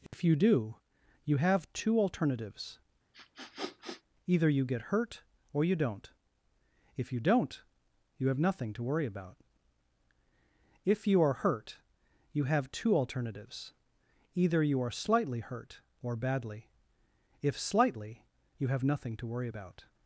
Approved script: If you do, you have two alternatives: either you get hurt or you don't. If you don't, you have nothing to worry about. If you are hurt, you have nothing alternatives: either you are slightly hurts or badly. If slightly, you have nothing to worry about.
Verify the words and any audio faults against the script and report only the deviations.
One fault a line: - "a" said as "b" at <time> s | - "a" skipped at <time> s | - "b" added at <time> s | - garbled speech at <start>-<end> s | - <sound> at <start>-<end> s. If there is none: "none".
- dropout at 0.1-0.1 s
- sniff at 3.1-4.0 s
- "nothing" said as "two" at 12.7 s
- "hurts" said as "hurt" at 15.4 s